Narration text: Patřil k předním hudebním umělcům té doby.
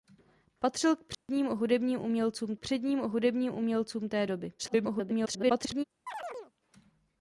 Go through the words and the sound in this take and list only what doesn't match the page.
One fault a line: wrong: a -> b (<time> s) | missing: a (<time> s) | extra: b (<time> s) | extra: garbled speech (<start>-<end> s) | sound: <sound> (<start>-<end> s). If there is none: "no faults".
sound: dropout (1.1-1.3 s)
extra: předním hudebním umělcům (2.6 s)
extra: garbled speech (4.6-5.8 s)
sound: chirp (6.1-6.5 s)